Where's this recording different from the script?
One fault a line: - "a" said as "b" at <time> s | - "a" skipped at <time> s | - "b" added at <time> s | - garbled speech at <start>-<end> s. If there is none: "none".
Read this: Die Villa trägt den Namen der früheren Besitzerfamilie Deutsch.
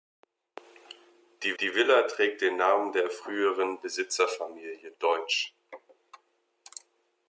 - "die" added at 1.6 s